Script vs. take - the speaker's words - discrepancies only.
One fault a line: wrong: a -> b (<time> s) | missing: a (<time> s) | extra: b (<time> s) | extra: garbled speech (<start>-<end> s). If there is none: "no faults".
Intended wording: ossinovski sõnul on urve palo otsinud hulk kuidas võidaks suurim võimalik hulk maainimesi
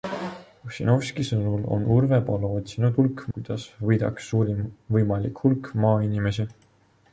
no faults